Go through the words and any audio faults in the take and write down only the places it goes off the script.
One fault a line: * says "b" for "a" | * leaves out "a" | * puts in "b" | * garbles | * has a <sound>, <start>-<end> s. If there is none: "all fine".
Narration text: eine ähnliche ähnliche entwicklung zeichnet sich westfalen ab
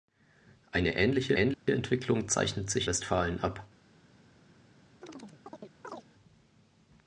* has a dropout, 1.5-1.7 s
* has a chirp, 5.0-6.1 s